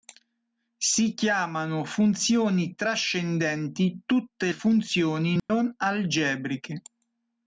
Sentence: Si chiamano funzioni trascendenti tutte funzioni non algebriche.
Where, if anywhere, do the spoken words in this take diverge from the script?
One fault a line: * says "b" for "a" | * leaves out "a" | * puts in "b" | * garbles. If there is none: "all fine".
all fine